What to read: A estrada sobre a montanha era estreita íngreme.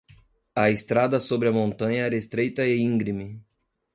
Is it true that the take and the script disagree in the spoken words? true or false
true